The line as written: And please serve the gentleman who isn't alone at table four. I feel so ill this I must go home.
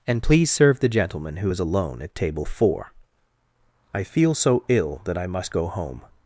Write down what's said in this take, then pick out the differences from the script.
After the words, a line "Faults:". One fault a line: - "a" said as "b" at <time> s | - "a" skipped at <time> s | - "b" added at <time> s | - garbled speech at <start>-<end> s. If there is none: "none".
And please serve the gentleman who is alone at table four. I feel so ill that I must go home.
Faults:
- "isn't" said as "is" at 1.5 s
- "this" said as "that" at 5.1 s